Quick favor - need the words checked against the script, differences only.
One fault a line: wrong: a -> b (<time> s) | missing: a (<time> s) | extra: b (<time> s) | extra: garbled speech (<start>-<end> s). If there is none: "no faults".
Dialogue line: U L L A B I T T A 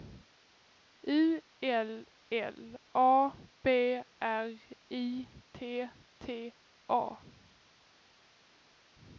extra: R (4.2 s)